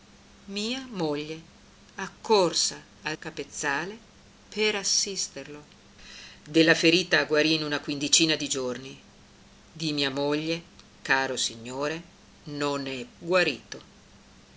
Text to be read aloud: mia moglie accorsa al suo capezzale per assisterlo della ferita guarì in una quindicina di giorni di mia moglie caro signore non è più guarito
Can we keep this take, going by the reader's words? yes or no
no